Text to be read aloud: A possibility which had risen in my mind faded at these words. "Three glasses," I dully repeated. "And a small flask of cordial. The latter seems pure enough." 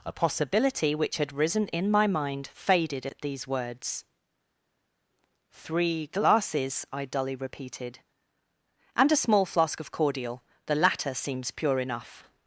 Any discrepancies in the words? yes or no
no